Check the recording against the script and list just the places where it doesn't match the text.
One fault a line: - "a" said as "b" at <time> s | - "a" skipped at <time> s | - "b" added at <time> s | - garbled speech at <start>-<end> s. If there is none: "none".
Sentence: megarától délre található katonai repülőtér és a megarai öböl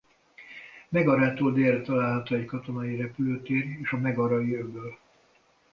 - "egy" added at 2.4 s